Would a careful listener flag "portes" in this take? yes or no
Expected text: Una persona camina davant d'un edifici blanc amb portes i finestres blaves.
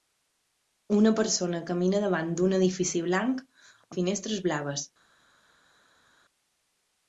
yes